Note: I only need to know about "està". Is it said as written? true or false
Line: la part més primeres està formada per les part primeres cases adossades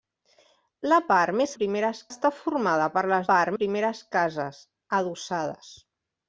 true